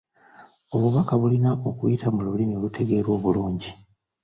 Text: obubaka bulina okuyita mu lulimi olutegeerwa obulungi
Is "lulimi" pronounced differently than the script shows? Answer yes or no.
no